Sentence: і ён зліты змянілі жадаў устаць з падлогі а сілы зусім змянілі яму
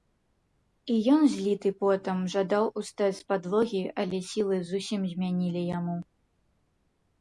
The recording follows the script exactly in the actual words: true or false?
false